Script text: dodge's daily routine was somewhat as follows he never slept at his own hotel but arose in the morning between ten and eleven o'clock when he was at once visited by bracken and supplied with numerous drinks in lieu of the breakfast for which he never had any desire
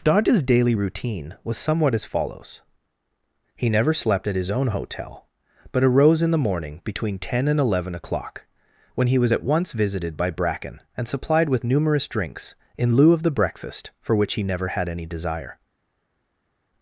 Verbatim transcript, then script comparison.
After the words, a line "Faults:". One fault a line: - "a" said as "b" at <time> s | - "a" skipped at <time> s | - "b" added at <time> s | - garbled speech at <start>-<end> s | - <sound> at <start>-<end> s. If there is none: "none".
dodge's daily routine was somewhat as follows he never slept at his own hotel but arose in the morning between ten and eleven o'clock when he was at once visited by bracken and supplied with numerous drinks in lieu of the breakfast for which he never had any desire
Faults:
none